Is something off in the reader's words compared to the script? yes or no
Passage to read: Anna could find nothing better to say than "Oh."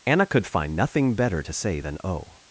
no